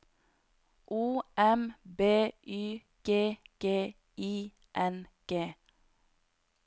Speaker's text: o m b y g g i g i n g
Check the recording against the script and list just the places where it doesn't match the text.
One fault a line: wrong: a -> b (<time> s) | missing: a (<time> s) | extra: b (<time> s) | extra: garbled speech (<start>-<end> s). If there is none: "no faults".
missing: g i (4.5 s)